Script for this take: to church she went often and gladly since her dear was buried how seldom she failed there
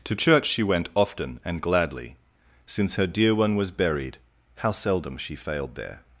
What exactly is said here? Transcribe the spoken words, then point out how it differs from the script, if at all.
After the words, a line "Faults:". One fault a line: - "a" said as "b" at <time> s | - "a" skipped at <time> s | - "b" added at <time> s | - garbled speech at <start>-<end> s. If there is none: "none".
to church she went often and gladly since her dear one was buried how seldom she failed there
Faults:
- "one" added at 3.4 s